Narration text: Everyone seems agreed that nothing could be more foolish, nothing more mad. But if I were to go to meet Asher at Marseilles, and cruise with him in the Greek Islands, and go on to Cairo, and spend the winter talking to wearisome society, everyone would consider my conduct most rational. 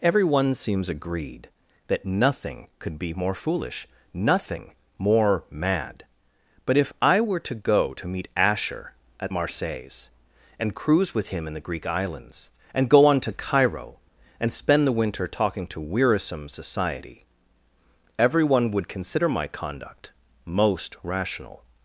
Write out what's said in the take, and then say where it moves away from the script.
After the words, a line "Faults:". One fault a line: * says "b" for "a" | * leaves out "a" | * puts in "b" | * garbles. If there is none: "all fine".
Everyone seems agreed that nothing could be more foolish, nothing more mad. But if I were to go to meet Asher at Marseilles, and cruise with him in the Greek Islands, and go on to Cairo, and spend the winter talking to wearisome society, everyone would consider my conduct most rational.
Faults:
all fine